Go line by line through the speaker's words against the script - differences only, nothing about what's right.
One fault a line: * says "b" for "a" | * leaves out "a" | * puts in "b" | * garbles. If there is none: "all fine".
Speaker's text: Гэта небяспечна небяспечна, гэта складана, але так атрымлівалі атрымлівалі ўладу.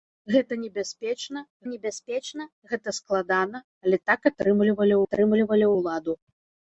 all fine